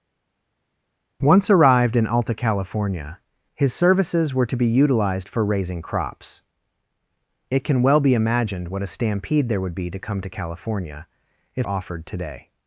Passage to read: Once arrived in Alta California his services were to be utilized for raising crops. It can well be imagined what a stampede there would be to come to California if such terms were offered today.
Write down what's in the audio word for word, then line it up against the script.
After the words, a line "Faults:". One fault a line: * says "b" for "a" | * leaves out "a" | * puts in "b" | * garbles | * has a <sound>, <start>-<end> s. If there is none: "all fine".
Once arrived in Alta California his services were to be utilized for raising crops. It can well be imagined what a stampede there would be to come to California if offered today.
Faults:
* leaves out "such terms were"